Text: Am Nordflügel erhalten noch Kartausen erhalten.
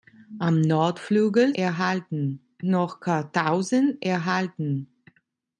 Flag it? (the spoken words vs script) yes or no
no